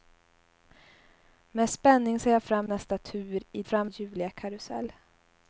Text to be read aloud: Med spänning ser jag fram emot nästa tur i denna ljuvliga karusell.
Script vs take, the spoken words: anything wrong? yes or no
yes